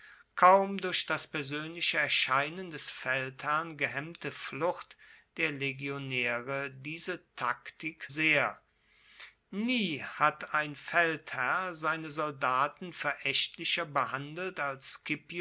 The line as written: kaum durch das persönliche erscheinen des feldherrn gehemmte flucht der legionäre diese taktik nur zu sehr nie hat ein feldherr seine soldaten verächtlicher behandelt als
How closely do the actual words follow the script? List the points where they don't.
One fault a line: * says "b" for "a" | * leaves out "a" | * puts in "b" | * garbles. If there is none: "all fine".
* leaves out "nur zu"